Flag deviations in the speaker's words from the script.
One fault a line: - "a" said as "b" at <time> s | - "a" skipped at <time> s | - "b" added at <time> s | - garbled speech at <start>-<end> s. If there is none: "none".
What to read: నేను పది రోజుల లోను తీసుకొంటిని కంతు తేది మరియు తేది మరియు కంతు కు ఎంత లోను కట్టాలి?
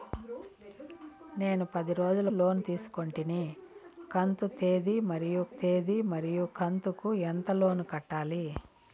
none